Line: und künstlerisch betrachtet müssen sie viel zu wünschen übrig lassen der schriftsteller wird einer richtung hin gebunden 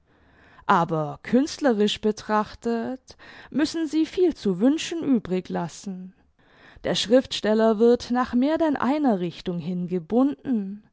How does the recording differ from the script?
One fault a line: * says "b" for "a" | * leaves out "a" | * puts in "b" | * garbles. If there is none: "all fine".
* says "aber" for "und"
* puts in "nach mehr denn"